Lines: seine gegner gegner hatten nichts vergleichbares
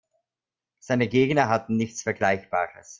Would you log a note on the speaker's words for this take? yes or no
yes